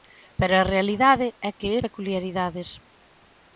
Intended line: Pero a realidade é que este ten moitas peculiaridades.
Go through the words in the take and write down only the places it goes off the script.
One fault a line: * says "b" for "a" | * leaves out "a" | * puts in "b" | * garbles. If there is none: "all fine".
* leaves out "este ten moitas"